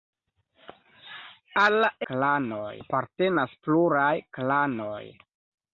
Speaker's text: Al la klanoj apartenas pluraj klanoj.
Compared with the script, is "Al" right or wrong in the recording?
right